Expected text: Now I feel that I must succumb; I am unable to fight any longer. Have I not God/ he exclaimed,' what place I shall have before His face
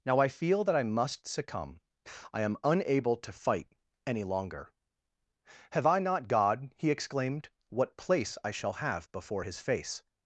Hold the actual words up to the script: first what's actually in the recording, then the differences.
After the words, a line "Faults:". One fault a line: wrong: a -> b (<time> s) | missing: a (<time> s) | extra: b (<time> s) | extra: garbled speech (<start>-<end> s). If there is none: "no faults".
Now I feel that I must succumb; I am unable to fight any longer. Have I not God/ he exclaimed,' what place I shall have before His face
Faults:
no faults